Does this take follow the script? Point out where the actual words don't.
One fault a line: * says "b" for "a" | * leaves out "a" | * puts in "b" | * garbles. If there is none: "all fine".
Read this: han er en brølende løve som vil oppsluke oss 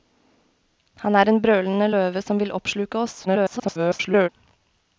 * garbles